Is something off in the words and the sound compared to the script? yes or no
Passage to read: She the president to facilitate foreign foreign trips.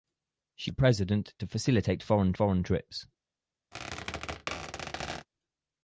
yes